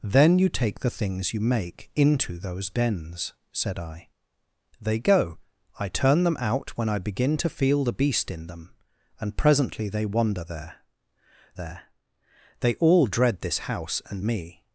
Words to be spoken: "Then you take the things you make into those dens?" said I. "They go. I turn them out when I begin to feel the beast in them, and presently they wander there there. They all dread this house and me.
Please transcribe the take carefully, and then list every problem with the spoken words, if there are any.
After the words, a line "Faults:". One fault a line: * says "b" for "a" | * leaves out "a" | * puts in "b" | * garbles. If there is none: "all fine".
"Then you take the things you make into those dens?" said I. "They go. I turn them out when I begin to feel the beast in them, and presently they wander there there. They all dread this house and me.
Faults:
all fine